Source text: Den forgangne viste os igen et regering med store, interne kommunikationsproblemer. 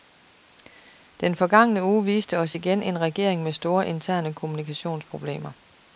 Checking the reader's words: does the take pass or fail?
fail